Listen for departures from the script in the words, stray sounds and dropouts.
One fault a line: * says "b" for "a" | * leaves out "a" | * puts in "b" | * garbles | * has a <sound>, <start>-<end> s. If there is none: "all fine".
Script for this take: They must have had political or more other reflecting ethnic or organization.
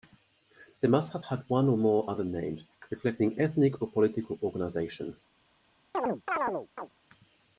* says "one" for "political"
* puts in "names"
* puts in "political"
* has a chirp, 5.9-6.9 s